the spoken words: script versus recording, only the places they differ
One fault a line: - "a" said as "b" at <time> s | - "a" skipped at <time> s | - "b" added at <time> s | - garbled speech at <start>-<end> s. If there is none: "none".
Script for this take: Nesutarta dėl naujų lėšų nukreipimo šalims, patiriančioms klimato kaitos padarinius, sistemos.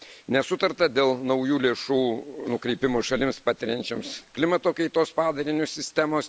none